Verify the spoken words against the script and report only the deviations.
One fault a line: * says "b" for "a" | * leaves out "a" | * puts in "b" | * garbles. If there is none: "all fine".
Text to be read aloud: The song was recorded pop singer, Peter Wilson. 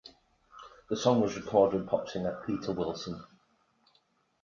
all fine